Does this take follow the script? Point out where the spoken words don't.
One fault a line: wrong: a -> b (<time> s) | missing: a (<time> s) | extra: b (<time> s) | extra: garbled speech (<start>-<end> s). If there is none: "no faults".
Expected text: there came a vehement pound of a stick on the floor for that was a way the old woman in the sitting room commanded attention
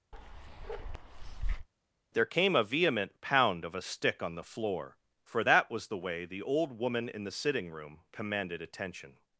wrong: a -> the (5.9 s)